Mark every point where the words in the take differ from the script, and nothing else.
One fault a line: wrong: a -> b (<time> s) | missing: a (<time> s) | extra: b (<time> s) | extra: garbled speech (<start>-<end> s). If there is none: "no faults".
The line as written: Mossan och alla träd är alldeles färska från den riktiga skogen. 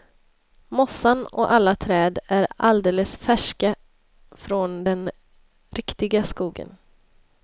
no faults